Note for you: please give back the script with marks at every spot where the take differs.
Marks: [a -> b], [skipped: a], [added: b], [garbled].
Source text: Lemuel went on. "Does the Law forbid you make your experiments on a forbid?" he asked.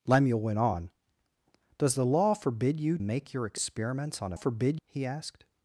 Lemuel went on. "Does the Law forbid you make your experiments on a forbid?" he asked.